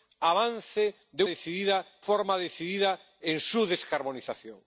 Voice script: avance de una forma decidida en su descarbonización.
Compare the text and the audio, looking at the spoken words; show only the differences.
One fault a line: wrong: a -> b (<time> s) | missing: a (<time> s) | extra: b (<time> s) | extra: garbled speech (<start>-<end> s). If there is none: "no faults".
wrong: una -> decidida (1.2 s)